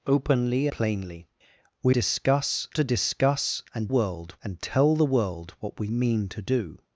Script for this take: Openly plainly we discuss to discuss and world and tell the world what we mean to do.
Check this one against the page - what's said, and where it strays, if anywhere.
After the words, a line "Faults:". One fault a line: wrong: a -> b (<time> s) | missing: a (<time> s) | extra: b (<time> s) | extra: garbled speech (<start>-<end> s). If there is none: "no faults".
Openly plainly we discuss to discuss and world and tell the world what we mean to do.
Faults:
no faults